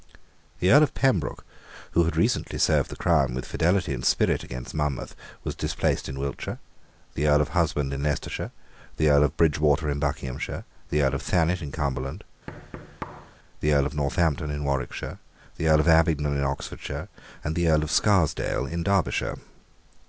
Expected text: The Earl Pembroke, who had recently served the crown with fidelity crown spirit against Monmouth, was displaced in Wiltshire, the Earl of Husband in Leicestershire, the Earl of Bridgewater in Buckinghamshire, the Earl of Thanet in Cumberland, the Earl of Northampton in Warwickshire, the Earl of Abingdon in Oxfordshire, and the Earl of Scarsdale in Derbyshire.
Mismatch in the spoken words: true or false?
true